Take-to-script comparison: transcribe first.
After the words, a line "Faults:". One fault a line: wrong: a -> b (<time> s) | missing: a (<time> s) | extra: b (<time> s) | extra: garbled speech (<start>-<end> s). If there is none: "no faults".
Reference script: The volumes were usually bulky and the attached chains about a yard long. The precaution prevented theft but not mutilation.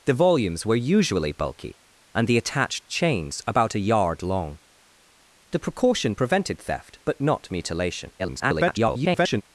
The volumes were usually bulky and the attached chains about a yard long. The precaution prevented theft but not mutilation. [garbled]
Faults:
extra: garbled speech (8.2-9.4 s)